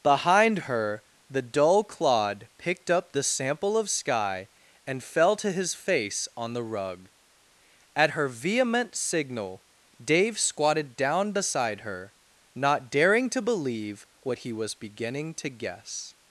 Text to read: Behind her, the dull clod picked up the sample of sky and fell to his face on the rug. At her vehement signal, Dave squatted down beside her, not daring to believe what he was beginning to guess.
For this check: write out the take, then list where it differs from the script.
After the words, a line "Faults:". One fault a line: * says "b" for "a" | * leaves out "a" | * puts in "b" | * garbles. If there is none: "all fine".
Behind her, the dull clod picked up the sample of sky and fell to his face on the rug. At her vehement signal, Dave squatted down beside her, not daring to believe what he was beginning to guess.
Faults:
all fine